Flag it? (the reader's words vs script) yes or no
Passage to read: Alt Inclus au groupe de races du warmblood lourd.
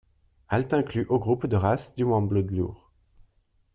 no